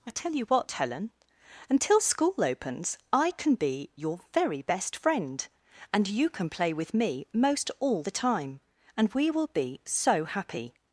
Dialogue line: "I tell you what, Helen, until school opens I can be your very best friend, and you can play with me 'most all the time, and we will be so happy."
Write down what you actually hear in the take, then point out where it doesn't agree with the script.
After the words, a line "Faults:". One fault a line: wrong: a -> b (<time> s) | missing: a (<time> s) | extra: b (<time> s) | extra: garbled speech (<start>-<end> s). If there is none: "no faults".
"I tell you what, Helen, until school opens I can be your very best friend, and you can play with me 'most all the time, and we will be so happy."
Faults:
no faults